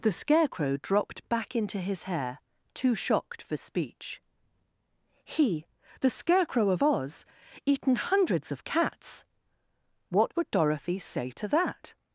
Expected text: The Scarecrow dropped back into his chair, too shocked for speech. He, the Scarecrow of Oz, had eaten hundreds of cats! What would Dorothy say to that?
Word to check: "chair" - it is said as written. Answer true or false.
false